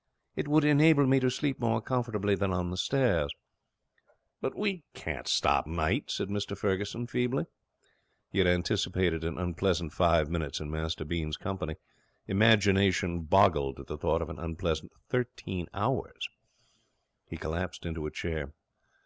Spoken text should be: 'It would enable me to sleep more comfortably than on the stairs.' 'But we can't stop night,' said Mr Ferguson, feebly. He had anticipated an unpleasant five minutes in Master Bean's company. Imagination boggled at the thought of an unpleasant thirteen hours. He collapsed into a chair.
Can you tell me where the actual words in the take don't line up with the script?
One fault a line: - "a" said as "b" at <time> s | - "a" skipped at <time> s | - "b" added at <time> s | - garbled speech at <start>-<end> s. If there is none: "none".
none